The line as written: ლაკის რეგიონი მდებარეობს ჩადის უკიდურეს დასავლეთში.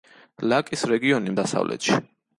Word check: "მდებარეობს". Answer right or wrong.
wrong